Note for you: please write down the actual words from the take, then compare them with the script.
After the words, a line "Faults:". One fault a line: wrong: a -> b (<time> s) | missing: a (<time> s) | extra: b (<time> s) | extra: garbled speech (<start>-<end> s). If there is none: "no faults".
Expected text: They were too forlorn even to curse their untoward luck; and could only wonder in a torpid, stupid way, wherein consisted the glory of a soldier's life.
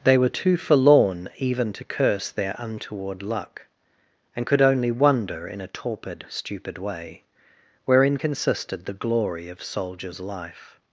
They were too forlorn even to curse their untoward luck; and could only wonder in a torpid, stupid way, wherein consisted the glory of soldier's life.
Faults:
missing: a (9.6 s)